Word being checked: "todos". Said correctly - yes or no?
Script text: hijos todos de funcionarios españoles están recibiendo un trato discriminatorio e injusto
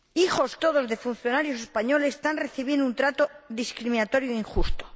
yes